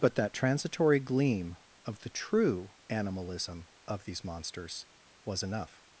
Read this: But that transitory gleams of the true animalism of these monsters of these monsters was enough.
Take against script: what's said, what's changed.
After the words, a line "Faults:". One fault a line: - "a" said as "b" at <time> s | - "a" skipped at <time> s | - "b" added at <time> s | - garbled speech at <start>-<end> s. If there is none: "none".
But that transitory gleam of the true animalism of these monsters was enough.
Faults:
- "gleams" said as "gleam" at 1.0 s
- "of these monsters" skipped at 4.9 s